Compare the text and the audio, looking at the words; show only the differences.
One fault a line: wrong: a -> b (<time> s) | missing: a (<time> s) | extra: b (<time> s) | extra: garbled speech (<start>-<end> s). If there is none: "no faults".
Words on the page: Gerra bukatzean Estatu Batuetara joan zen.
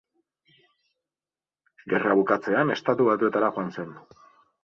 no faults